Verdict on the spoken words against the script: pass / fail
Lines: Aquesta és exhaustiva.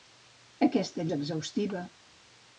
pass